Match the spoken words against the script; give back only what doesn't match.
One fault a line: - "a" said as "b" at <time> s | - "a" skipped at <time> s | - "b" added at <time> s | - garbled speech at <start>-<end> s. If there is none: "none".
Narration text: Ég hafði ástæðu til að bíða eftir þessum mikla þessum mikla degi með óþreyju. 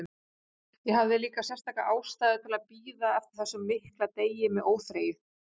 - "líka sérstaka" added at 1.2 s
- "þessum mikla" skipped at 4.1 s